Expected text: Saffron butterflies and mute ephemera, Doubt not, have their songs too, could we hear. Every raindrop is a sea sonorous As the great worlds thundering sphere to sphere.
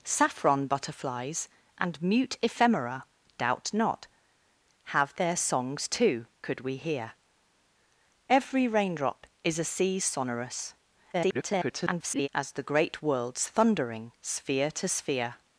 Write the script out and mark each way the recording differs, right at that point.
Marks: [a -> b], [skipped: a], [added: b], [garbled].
Saffron butterflies and mute ephemera, Doubt not, have their songs too, could we hear. Every raindrop is a sea sonorous [garbled] As the great worlds thundering sphere to sphere.